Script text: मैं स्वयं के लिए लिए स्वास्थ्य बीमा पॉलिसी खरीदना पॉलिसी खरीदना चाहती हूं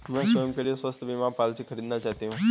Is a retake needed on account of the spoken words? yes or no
yes